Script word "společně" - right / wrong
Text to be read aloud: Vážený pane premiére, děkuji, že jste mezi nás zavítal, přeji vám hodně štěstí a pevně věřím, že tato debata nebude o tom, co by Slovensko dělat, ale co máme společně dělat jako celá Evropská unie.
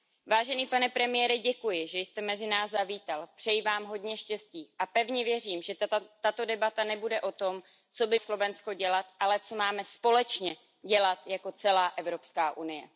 right